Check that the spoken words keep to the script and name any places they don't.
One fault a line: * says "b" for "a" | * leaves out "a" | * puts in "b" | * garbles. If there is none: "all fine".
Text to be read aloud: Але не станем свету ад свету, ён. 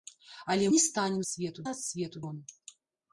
all fine